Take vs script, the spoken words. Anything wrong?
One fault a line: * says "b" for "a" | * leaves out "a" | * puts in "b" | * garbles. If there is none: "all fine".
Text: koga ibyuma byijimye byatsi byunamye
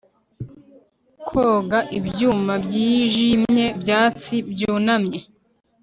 all fine